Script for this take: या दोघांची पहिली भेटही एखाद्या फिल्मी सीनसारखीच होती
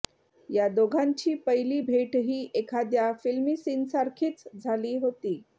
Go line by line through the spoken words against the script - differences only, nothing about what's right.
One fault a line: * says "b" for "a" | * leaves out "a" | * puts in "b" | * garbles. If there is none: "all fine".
* puts in "झाली"